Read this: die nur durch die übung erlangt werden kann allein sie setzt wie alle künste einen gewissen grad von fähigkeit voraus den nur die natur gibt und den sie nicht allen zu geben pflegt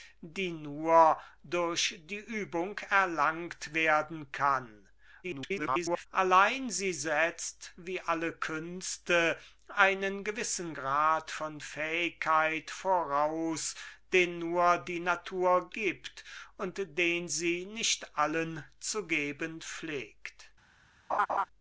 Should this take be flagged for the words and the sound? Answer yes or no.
yes